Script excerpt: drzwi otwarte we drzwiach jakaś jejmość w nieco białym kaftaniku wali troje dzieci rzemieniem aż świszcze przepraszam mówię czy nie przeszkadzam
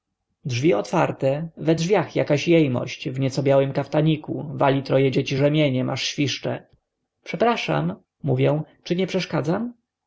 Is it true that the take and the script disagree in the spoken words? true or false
false